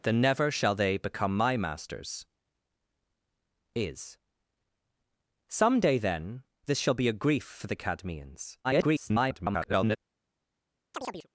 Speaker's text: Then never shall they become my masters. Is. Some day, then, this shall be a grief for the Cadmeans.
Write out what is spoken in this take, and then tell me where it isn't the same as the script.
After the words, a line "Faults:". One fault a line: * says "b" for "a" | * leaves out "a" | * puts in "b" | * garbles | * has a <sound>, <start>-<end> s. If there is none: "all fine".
Then never shall they become my masters. Is. Some day, then, this shall be a grief for the Cadmeans. [garbled]
Faults:
* garbles
* has a chirp, 10.9-11.3 s